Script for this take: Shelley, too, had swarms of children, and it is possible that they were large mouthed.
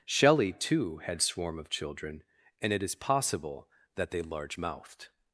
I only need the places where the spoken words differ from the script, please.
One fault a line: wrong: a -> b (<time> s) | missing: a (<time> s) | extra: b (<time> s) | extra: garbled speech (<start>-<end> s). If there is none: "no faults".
wrong: swarms -> swarm (1.2 s)
missing: were (4.2 s)